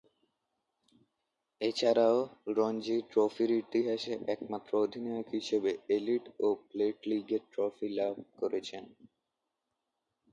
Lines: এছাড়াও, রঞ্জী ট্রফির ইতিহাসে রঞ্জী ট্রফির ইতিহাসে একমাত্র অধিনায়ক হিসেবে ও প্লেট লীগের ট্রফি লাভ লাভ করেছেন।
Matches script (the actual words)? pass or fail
fail